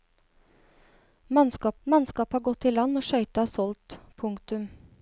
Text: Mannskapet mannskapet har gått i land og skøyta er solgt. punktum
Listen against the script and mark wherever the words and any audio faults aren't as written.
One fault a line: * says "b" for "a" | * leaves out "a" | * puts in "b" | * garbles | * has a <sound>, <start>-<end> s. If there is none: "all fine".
all fine